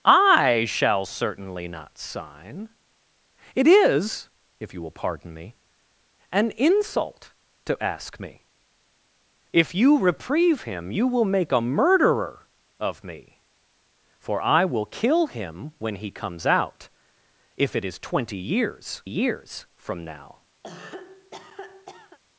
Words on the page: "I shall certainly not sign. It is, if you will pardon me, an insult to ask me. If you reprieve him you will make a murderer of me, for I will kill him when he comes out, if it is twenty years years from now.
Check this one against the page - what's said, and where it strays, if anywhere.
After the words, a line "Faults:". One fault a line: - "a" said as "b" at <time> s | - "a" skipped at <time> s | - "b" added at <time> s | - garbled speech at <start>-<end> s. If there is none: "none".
"I shall certainly not sign. It is, if you will pardon me, an insult to ask me. If you reprieve him you will make a murderer of me, for I will kill him when he comes out, if it is twenty years years from now.
Faults:
none